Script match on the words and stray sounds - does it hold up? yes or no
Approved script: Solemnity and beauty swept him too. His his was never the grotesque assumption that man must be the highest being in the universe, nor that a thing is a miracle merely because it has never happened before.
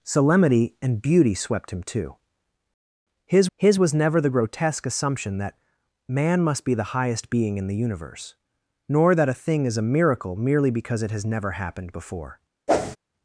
no